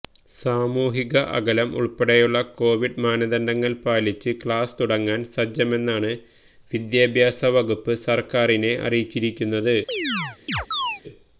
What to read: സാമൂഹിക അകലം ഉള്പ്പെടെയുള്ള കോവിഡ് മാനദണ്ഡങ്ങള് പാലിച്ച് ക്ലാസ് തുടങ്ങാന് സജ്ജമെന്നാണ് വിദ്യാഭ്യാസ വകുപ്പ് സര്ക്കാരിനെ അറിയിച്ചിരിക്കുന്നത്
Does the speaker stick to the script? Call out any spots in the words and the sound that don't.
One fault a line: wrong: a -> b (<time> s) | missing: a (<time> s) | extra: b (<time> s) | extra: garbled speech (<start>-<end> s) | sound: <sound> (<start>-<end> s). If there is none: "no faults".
sound: chirp (9.9-11.0 s)